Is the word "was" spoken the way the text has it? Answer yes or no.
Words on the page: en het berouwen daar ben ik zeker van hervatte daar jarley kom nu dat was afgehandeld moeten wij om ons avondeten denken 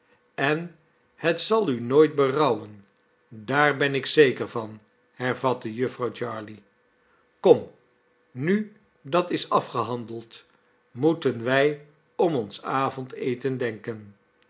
no